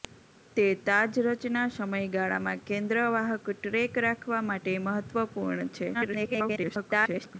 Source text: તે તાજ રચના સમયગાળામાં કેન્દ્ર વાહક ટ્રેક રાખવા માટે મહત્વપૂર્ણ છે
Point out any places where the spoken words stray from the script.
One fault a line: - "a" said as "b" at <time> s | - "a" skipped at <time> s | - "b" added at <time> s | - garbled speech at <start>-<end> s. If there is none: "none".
- garbled speech at 5.9-7.4 s